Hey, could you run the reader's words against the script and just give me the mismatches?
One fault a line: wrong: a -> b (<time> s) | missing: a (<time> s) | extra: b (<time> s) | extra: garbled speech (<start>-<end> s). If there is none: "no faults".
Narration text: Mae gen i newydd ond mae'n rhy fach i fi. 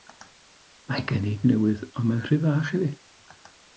no faults